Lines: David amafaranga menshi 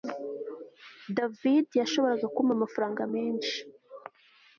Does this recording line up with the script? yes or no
no